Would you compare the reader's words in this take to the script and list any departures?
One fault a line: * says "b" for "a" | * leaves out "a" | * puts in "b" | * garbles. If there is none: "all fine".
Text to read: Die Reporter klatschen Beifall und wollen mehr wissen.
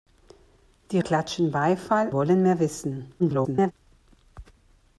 * leaves out "Reporter"
* leaves out "und"
* garbles